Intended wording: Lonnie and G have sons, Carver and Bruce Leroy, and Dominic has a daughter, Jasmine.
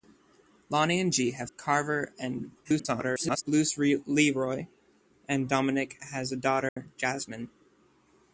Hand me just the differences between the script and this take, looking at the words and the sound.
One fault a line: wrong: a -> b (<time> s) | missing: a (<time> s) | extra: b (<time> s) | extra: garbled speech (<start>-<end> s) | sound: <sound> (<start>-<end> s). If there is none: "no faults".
missing: sons (1.5 s)
extra: garbled speech (2.6-3.4 s)
sound: dropout (6.7-6.8 s)